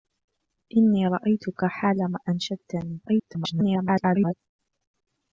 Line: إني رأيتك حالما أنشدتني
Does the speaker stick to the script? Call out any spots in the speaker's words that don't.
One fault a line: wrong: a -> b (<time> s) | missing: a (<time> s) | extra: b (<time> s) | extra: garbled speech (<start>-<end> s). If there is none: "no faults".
extra: garbled speech (3.1-4.3 s)